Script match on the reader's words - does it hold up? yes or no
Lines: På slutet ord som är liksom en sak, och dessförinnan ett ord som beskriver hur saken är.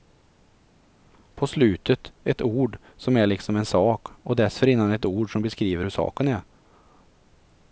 no